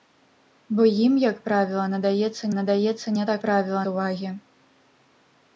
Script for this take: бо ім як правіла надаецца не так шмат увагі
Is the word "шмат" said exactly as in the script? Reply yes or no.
no